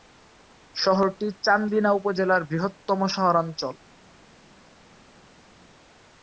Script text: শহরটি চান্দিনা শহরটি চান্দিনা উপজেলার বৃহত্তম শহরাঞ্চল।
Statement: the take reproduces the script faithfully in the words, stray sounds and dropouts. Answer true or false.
false